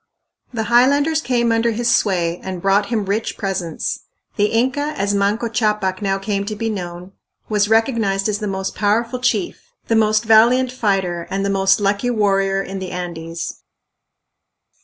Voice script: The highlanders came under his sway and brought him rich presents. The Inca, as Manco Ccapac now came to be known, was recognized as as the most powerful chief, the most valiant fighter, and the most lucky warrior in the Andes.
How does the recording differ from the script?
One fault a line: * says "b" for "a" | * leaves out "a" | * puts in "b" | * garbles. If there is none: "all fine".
* leaves out "as"